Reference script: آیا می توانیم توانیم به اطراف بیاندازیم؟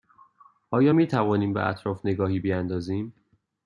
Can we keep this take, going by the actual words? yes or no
no